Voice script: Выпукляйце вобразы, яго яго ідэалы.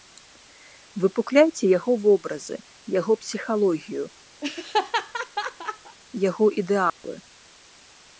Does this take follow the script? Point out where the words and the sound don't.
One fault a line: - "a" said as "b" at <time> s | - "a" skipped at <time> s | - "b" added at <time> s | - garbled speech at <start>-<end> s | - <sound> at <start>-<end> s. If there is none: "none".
- "яго" added at 1.8 s
- "псіхалогію" added at 3.2 s
- laugh at 4.4-6.0 s
- dropout at 6.9-7.0 s